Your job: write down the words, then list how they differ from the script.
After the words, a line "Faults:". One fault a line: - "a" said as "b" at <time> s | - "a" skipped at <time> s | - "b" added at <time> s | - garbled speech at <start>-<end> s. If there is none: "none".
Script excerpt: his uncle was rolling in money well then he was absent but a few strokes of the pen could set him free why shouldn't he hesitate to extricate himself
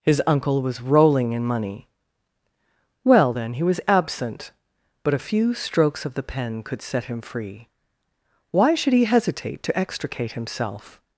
his uncle was rolling in money well then he was absent but a few strokes of the pen could set him free why should he hesitate to extricate himself
Faults:
- "shouldn't" said as "should" at 8.7 s